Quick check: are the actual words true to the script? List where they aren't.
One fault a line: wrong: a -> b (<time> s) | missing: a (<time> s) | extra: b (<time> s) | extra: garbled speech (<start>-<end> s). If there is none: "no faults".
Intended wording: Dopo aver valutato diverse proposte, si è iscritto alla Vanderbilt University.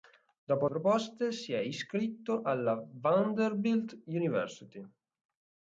missing: aver valutato diverse (0.7 s)